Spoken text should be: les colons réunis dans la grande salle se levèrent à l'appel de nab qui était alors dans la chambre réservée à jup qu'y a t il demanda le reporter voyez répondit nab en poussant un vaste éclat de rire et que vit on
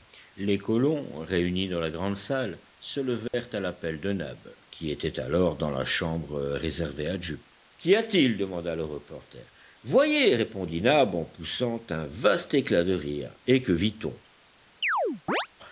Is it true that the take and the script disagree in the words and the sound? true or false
true